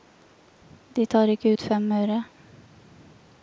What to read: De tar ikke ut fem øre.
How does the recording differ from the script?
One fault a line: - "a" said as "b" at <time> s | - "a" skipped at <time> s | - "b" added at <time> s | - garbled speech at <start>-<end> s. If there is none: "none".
none